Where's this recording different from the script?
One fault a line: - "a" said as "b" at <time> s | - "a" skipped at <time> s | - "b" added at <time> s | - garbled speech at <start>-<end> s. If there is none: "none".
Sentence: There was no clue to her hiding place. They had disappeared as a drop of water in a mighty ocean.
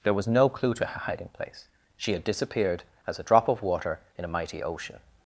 - "They" said as "She" at 2.0 s